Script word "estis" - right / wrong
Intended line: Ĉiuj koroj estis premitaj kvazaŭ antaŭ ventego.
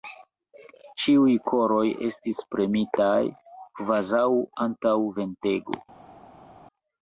right